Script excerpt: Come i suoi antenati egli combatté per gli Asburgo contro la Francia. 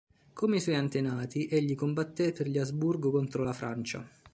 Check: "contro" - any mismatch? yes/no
no